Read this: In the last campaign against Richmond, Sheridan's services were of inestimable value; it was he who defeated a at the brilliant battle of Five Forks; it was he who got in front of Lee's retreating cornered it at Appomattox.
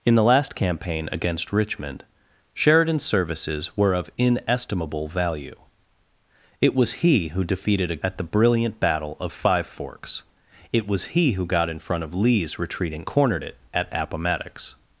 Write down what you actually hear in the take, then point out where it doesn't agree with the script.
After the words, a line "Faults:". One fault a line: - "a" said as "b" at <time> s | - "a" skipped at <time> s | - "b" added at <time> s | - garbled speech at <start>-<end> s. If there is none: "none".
In the last campaign against Richmond, Sheridan's services were of inestimable value; it was he who defeated a at the brilliant battle of Five Forks; it was he who got in front of Lee's retreating cornered it at Appomattox.
Faults:
none